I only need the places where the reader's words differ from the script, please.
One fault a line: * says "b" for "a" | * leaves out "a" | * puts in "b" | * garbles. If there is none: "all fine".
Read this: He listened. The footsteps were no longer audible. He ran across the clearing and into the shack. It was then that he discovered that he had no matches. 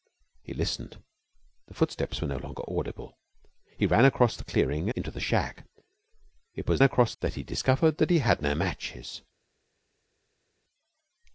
* leaves out "and"
* says "across" for "then"